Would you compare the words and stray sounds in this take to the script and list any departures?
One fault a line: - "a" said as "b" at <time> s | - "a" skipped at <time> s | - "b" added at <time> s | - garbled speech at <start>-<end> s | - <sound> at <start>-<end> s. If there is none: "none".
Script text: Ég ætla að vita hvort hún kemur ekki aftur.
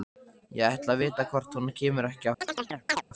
- chirp at 2.4-3.0 s